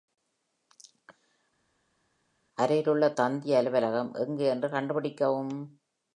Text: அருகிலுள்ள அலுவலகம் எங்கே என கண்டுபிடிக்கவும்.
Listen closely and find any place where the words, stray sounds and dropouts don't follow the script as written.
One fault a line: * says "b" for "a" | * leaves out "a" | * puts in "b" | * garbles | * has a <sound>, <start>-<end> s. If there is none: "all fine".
* puts in "தந்தி"
* says "என்று" for "என"